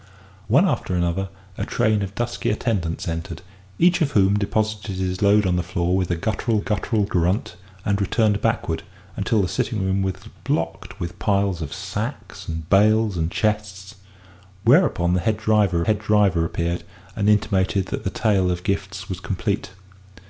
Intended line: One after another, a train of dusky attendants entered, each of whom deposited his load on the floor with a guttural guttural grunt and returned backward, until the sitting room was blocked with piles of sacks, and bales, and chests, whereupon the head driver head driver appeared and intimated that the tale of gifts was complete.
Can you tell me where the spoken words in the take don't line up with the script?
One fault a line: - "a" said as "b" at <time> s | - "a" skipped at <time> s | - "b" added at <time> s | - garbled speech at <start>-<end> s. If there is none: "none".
none